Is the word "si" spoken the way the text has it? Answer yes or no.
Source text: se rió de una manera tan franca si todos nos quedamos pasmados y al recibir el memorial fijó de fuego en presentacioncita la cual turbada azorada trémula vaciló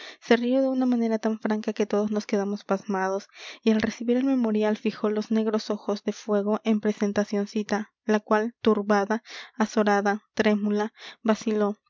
no